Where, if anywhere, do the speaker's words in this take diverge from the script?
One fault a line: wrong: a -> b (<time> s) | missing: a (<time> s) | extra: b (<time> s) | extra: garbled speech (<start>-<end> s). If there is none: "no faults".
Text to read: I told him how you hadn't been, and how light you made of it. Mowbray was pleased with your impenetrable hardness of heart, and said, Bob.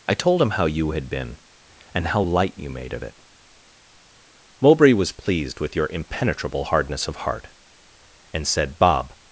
wrong: hadn't -> had (0.9 s)